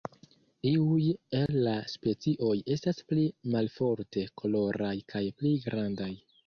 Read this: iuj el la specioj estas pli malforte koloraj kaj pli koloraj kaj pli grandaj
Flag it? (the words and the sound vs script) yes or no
yes